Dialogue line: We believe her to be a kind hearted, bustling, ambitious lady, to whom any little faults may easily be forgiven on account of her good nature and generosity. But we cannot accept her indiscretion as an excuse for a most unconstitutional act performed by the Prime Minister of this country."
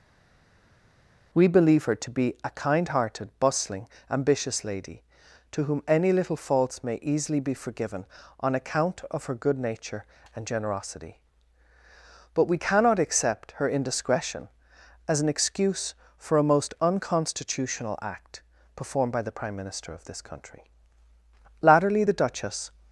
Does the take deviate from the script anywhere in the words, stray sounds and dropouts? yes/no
yes